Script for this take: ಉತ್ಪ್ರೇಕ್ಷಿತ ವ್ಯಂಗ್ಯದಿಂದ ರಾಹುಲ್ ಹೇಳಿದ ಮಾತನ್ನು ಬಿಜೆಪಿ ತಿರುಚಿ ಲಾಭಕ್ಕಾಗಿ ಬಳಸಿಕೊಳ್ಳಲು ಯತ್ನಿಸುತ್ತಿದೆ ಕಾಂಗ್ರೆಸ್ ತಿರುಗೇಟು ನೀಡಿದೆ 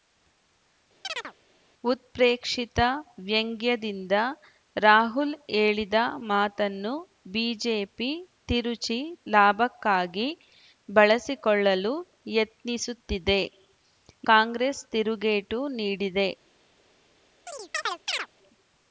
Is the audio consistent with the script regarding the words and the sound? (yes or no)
no